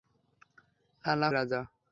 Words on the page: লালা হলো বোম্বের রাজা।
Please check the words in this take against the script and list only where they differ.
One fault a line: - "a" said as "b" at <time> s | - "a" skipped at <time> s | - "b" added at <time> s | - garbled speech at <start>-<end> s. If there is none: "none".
- "হলো বোম্বের" skipped at 1.3 s